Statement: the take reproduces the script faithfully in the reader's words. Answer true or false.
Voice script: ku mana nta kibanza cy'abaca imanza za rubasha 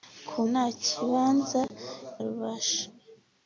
false